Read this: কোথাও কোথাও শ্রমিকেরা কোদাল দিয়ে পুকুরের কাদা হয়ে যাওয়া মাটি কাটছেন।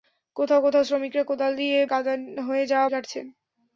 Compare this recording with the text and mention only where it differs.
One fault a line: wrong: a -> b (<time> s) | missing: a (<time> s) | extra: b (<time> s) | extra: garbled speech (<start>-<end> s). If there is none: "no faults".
missing: পুকুরের (1.8 s)
missing: মাটি (2.9 s)